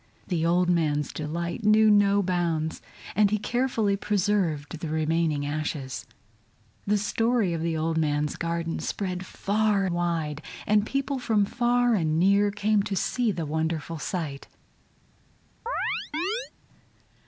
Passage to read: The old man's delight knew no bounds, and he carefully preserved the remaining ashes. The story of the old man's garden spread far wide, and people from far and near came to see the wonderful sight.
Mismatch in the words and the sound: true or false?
true